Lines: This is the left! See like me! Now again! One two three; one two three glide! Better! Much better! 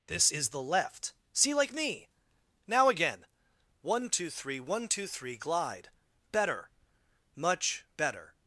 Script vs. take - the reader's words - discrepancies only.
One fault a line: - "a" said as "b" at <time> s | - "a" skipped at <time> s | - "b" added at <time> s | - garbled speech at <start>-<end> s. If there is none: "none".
none